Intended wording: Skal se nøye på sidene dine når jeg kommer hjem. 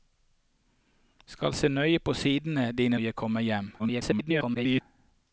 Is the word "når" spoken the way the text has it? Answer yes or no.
no